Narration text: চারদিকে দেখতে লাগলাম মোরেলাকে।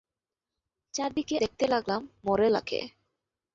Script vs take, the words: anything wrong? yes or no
no